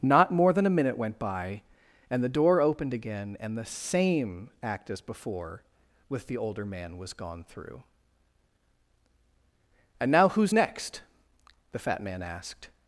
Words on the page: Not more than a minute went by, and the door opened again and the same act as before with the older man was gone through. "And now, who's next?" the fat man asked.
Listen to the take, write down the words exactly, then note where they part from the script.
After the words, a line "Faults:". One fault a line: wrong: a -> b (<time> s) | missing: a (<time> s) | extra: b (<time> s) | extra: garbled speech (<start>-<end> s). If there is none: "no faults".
Not more than a minute went by, and the door opened again and the same act as before with the older man was gone through. "And now, who's next?" the fat man asked.
Faults:
no faults